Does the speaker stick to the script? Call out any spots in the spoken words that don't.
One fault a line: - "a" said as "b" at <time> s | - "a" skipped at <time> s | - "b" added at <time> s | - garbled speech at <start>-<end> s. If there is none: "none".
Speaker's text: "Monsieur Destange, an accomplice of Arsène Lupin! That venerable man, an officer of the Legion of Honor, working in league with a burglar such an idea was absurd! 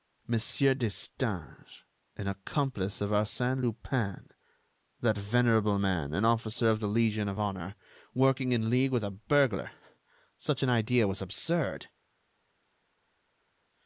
none